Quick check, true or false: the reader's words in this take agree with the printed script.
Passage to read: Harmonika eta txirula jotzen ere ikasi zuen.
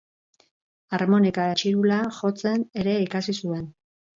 false